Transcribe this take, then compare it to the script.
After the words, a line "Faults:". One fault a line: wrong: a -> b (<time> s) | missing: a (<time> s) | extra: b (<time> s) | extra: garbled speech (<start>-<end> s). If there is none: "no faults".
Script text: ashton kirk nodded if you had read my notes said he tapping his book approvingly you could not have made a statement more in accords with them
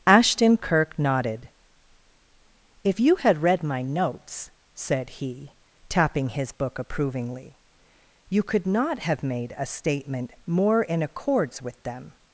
ashton kirk nodded if you had read my notes said he tapping his book approvingly you could not have made a statement more in accords with them
Faults:
no faults